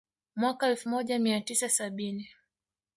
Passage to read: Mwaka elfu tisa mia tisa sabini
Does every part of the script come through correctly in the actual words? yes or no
no